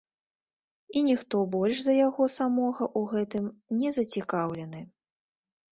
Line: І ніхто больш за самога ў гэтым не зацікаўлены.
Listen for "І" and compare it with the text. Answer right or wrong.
right